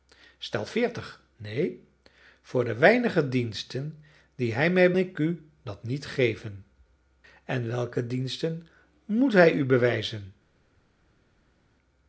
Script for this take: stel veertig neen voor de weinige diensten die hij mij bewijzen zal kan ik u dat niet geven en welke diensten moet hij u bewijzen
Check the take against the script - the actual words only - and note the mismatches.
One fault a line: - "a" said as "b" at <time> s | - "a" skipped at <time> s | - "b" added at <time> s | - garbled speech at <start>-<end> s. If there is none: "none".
- "bewijzen zal kan" skipped at 4.9 s